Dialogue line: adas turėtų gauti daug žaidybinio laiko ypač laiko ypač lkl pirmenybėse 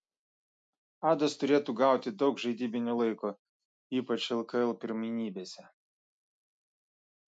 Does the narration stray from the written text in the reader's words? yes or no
yes